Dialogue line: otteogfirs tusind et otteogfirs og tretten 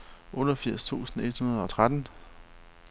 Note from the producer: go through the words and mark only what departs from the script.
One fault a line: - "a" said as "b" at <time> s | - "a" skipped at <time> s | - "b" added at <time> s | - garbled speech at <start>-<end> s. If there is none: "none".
- "otteogfirs" said as "hundrede" at 1.4 s